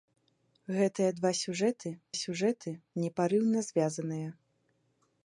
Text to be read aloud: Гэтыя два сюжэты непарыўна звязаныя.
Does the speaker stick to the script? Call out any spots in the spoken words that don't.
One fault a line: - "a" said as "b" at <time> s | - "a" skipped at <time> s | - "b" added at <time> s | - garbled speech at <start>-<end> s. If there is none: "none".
- "сюжэты" added at 2.2 s